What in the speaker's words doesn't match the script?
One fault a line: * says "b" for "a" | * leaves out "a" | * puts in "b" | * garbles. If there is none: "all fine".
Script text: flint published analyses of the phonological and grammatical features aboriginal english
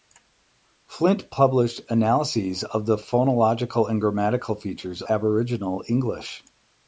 all fine